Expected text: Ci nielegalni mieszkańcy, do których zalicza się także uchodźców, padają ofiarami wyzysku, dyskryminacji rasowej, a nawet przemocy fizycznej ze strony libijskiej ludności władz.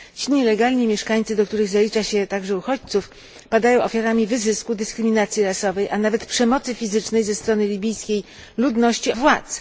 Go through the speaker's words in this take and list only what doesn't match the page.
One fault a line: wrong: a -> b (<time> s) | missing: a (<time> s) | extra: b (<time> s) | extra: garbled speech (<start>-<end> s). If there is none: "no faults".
no faults